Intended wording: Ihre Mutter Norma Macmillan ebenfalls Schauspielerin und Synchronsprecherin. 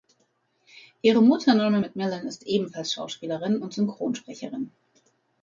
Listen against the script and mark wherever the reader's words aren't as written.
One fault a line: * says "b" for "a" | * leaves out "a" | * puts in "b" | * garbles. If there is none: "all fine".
* puts in "ist"